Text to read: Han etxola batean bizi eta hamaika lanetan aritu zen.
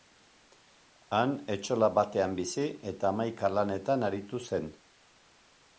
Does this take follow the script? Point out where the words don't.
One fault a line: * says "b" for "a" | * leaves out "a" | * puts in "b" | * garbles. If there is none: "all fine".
all fine